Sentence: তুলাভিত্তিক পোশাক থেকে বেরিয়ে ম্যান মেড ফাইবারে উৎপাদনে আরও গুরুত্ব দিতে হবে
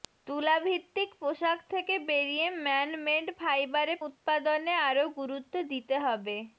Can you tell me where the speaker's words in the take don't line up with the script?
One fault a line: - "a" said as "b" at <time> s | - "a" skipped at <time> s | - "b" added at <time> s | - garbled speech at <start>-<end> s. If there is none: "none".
none